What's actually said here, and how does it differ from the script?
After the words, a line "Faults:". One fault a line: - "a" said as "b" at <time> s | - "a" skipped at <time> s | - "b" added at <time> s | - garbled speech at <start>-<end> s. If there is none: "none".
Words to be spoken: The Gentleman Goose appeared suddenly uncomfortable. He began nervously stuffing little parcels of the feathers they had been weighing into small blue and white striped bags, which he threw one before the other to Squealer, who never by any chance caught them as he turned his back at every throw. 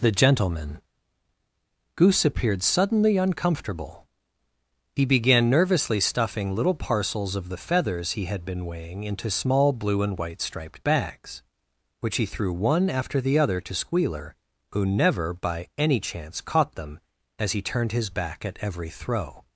The Gentleman Goose appeared suddenly uncomfortable. He began nervously stuffing little parcels of the feathers he had been weighing into small blue and white striped bags, which he threw one after the other to Squealer, who never by any chance caught them as he turned his back at every throw.
Faults:
- "they" said as "he" at 8.1 s
- "before" said as "after" at 12.9 s